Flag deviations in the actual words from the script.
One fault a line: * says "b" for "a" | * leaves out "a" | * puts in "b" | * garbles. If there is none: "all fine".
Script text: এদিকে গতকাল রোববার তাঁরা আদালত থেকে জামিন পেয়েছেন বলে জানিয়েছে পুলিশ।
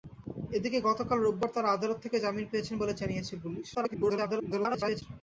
* garbles